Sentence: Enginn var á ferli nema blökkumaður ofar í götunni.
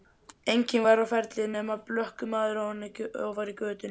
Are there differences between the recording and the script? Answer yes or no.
no